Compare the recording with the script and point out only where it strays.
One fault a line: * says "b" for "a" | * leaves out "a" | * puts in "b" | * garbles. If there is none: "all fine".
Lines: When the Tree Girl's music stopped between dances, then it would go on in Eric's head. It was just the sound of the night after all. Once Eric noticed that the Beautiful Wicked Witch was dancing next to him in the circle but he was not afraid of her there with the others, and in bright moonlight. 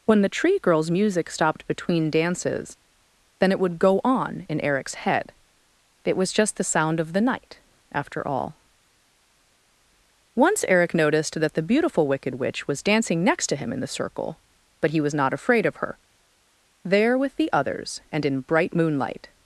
all fine